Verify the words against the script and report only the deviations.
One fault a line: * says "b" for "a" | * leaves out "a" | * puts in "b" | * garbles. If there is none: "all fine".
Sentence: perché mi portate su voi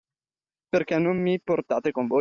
* puts in "non"
* says "con" for "su"